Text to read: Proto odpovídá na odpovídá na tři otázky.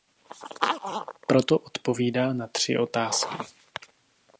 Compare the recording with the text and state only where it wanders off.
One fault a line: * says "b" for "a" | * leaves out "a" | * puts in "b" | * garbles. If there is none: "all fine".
* leaves out "odpovídá na"